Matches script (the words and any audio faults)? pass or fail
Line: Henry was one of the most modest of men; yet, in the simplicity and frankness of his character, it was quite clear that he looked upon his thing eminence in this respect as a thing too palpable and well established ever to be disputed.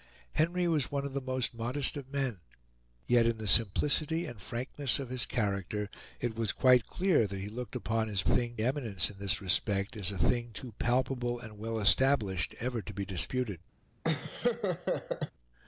fail